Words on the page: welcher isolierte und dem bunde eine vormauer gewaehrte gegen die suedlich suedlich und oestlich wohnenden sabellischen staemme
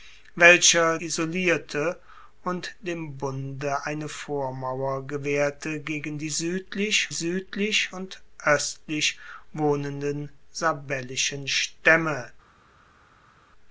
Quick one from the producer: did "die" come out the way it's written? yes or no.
yes